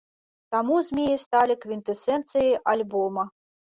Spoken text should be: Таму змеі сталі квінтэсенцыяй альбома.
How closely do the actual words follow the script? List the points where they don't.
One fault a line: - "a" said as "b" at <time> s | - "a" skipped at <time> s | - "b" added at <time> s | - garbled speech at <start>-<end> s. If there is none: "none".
none